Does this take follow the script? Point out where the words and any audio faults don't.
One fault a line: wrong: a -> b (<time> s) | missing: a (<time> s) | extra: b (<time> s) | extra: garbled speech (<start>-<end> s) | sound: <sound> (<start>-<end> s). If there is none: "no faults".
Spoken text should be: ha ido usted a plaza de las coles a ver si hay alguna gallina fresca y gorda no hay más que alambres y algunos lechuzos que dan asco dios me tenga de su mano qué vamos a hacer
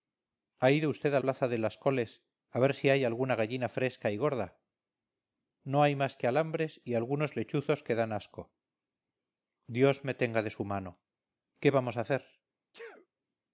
sound: sneeze (12.7-13.1 s)